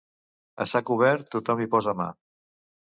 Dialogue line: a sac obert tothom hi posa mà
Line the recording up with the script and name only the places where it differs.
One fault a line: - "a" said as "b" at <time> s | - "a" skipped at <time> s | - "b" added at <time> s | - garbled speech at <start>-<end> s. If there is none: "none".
none